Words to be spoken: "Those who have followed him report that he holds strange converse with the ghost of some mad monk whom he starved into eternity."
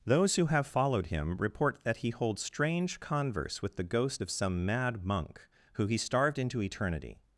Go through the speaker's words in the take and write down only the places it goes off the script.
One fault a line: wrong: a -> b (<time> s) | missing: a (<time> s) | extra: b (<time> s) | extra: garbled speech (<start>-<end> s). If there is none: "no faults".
wrong: whom -> who (5.7 s)